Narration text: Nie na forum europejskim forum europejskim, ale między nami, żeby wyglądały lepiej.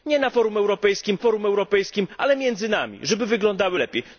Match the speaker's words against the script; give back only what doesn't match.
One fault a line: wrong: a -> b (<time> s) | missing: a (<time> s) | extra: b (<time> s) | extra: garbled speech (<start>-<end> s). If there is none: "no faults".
no faults